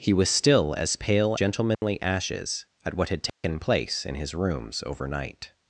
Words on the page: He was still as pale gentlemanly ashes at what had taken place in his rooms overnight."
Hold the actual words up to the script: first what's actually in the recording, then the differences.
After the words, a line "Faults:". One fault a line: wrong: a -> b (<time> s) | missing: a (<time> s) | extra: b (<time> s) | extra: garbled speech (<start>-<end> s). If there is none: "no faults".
He was still as pale gentlemanly ashes at what had taken place in his rooms overnight."
Faults:
no faults